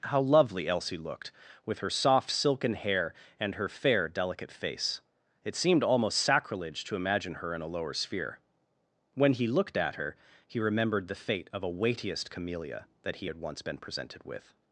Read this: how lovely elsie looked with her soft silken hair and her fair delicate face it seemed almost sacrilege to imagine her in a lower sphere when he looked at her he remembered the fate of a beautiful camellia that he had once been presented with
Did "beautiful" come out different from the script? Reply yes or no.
yes